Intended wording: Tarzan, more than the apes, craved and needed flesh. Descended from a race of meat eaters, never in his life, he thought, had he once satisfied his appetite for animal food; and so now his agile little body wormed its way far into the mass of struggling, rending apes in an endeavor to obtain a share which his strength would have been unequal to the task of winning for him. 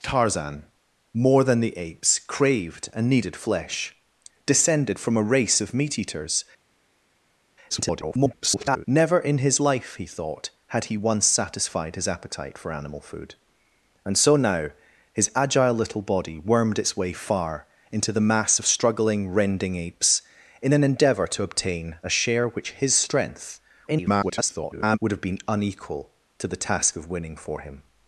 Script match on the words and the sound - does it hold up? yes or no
no